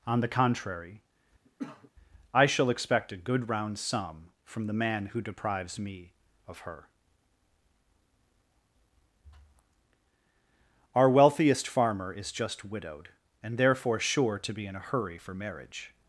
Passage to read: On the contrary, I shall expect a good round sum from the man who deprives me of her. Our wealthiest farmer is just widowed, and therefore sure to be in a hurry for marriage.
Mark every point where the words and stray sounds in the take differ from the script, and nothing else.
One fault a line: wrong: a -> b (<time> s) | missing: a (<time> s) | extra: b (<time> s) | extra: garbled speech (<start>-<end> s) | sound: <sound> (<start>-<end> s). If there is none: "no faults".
sound: cough (1.5-1.9 s)